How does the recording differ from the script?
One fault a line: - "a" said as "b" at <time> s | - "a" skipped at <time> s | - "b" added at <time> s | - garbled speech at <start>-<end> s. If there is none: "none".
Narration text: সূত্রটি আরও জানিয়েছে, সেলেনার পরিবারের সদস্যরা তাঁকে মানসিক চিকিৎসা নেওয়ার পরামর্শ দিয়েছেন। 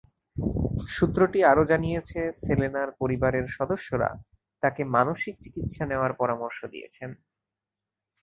none